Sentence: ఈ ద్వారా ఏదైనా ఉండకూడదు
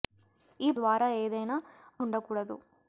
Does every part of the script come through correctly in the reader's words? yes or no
yes